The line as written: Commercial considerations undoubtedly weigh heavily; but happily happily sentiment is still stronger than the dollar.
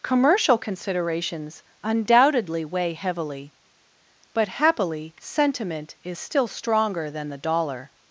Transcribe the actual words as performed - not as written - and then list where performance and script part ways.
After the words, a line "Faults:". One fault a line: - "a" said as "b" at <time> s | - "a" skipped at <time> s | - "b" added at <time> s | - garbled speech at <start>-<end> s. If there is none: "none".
Commercial considerations undoubtedly weigh heavily; but happily sentiment is still stronger than the dollar.
Faults:
- "happily" skipped at 5.1 s